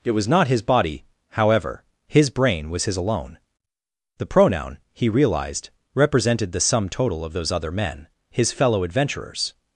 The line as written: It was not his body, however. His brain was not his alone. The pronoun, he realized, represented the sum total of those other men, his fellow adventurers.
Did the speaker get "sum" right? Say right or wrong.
right